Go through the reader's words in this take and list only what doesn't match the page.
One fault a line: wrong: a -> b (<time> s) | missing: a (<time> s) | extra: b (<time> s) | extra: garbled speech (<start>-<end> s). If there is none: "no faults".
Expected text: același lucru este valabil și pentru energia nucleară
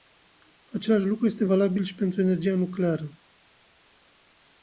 no faults